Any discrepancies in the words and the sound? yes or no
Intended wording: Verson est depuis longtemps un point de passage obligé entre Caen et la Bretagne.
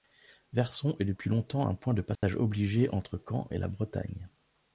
yes